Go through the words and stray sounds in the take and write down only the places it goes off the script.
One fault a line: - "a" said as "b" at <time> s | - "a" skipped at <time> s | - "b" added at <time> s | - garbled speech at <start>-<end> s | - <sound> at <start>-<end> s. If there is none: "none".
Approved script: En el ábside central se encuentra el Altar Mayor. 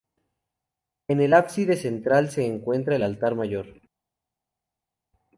none